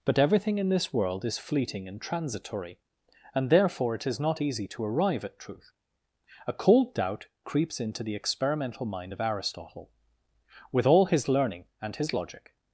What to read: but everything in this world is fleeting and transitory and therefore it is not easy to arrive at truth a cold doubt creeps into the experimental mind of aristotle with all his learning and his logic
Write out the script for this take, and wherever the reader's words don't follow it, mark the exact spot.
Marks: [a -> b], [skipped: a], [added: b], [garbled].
but everything in this world is fleeting and transitory and therefore it is not easy to arrive at truth a cold doubt creeps into the experimental mind of aristotle with all his learning and his logic